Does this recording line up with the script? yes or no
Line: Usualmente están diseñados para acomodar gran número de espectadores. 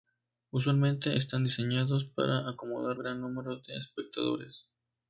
yes